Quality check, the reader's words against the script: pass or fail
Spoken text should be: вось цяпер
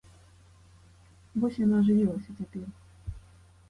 fail